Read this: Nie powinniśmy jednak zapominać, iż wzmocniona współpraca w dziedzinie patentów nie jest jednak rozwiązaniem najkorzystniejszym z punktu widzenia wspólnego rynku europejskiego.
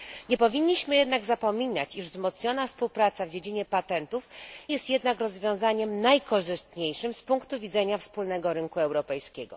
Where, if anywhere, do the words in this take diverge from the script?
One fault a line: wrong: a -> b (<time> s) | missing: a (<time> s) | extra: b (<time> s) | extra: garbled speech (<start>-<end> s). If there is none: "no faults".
missing: nie (4.3 s)